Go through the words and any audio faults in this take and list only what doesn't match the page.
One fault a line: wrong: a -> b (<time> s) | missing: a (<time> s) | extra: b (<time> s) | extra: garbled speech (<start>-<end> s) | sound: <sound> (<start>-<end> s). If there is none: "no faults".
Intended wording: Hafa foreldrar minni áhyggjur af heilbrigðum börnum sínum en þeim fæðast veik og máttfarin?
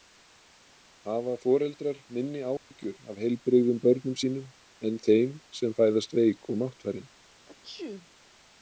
sound: dropout (2.6-2.7 s)
extra: sem (5.6 s)
sound: sneeze (7.4-8.1 s)